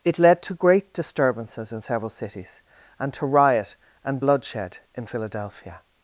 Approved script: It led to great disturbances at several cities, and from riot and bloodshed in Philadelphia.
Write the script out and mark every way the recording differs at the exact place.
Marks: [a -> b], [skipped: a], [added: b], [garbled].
It led to great disturbances [at -> in] several cities, and [from -> to] riot and bloodshed in Philadelphia.